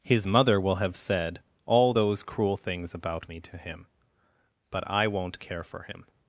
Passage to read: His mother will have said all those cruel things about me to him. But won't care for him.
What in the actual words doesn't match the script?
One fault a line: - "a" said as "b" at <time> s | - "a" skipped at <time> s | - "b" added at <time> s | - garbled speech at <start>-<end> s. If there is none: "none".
- "I" added at 4.9 s